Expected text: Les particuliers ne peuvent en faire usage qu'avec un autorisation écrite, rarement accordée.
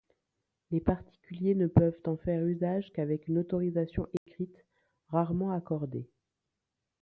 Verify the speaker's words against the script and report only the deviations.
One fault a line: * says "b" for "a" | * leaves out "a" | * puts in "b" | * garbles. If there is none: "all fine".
* says "une" for "un"